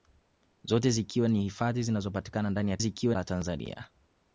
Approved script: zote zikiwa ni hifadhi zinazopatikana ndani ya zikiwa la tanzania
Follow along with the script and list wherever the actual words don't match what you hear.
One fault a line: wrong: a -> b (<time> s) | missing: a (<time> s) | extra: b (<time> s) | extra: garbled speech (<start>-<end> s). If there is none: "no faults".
no faults